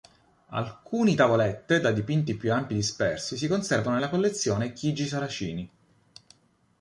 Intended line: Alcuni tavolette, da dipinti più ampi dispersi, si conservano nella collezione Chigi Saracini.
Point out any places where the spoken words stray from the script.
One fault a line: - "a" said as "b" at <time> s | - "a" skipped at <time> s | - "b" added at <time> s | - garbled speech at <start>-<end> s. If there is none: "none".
none